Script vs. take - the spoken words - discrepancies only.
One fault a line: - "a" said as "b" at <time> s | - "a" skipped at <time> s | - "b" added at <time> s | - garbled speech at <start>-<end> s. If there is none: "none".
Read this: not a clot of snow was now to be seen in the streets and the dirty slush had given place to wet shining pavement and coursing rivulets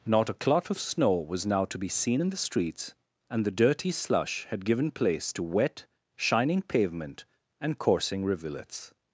none